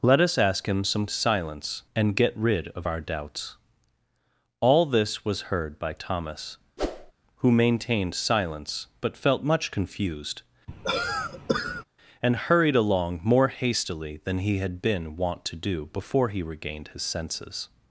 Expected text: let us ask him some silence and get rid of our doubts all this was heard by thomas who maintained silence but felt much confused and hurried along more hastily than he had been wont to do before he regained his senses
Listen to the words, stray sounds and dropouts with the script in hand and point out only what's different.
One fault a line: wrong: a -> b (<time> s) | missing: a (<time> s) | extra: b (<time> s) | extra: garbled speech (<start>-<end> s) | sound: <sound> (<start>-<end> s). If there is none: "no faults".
sound: whoosh (6.8-7.1 s)
sound: cough (10.7-11.8 s)